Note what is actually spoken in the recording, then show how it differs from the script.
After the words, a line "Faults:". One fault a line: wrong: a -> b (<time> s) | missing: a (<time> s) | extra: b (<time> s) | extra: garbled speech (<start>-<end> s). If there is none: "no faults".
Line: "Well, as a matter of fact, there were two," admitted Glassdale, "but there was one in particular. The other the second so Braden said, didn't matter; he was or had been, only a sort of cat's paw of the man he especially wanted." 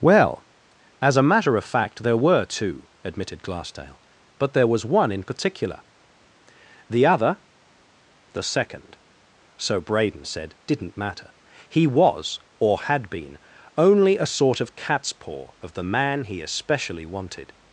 "Well, as a matter of fact, there were two," admitted Glassdale, "but there was one in particular. The other the second so Braden said, didn't matter; he was or had been, only a sort of cat's paw of the man he especially wanted."
Faults:
no faults